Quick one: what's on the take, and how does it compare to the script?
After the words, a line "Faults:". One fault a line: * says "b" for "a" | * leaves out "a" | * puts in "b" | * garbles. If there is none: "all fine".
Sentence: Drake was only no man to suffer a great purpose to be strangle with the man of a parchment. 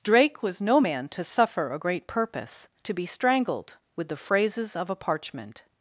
Drake was no man to suffer a great purpose to be strangled with the phrases of a parchment.
Faults:
* leaves out "only"
* says "strangled" for "strangle"
* says "phrases" for "man"